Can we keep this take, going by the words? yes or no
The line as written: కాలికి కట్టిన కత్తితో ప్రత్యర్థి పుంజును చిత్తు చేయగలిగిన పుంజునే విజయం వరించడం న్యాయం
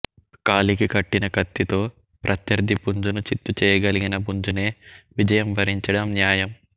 yes